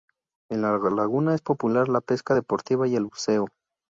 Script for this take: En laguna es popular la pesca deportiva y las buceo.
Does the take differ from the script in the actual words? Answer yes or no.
yes